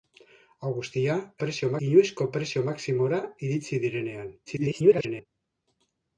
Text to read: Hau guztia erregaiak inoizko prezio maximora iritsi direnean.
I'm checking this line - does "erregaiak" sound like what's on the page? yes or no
no